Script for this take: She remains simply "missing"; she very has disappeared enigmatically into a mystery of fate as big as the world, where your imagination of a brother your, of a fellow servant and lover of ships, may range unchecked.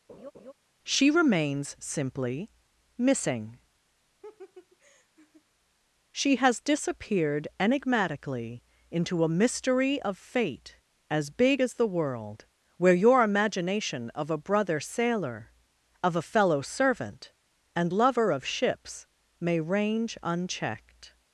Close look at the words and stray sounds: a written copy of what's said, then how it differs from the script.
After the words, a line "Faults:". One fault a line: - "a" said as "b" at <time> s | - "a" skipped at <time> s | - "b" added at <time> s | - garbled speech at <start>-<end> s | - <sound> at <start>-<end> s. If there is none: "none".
She remains simply "missing"; she has disappeared enigmatically into a mystery of fate as big as the world, where your imagination of a brother sailor, of a fellow servant and lover of ships, may range unchecked.
Faults:
- laugh at 0.1-0.5 s
- laugh at 4.2-5.4 s
- "very" skipped at 6.3 s
- "your" said as "sailor" at 14.8 s